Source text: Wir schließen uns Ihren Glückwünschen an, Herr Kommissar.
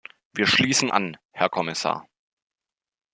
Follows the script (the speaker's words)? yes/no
no